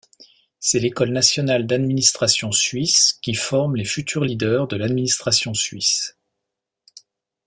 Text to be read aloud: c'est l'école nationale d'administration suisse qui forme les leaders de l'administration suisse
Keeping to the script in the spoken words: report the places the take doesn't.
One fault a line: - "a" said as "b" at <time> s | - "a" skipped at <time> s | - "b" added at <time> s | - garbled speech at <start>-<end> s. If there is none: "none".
- "futurs" added at 3.9 s